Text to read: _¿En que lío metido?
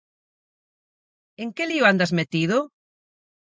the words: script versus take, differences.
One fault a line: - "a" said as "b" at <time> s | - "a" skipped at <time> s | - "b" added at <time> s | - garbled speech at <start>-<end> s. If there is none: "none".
- "andas" added at 1.9 s